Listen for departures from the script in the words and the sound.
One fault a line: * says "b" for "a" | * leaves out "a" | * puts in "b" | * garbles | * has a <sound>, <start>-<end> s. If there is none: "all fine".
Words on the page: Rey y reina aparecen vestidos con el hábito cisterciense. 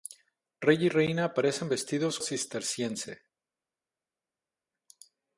* leaves out "con el hábito"